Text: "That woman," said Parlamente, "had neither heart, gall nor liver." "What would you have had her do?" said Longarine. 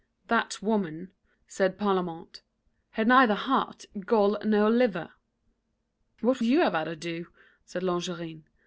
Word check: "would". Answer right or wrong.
wrong